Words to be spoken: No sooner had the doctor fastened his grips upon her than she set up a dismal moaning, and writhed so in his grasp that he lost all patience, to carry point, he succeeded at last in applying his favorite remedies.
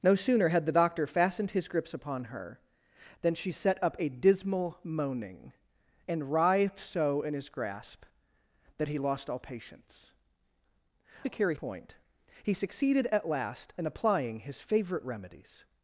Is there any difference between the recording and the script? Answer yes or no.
no